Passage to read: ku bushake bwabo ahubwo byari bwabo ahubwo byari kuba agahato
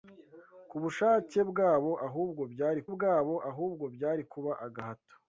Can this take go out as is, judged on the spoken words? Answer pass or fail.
pass